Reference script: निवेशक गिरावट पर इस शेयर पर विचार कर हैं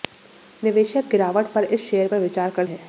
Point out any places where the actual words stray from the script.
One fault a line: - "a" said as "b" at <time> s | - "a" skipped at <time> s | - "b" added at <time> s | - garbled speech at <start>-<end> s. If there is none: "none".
none